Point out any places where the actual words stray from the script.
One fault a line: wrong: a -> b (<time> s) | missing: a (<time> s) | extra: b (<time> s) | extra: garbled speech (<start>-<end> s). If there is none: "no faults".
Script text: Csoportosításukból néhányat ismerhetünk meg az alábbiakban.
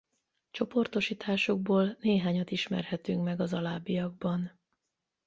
no faults